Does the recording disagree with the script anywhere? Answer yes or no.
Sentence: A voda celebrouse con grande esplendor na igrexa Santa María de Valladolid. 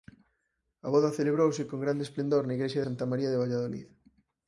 no